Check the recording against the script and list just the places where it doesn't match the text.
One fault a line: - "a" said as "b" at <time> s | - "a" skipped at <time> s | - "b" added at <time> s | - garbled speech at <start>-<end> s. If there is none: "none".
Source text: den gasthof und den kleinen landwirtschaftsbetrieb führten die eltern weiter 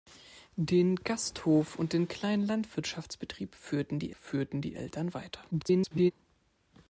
- "führten die" added at 4.1 s
- garbled speech at 5.5-6.1 s